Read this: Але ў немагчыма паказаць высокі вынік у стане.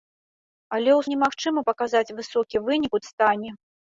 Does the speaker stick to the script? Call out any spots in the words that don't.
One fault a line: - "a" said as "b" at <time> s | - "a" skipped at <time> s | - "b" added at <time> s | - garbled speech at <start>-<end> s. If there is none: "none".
none